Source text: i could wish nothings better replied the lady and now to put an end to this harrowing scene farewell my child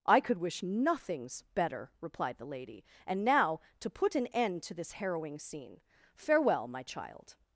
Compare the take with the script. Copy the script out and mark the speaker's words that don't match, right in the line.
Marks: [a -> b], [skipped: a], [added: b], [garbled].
i could wish nothings better replied the lady and now to put an end to this harrowing scene farewell my child